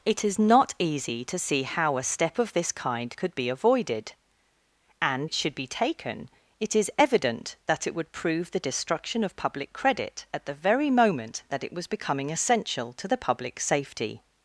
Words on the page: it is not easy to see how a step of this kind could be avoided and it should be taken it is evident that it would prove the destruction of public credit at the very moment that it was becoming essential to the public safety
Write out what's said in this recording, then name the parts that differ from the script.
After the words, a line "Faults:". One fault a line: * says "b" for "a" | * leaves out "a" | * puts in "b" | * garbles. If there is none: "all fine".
it is not easy to see how a step of this kind could be avoided and it should be taken it is evident that it would prove the destruction of public credit at the very moment that it was becoming essential to the public safety
Faults:
all fine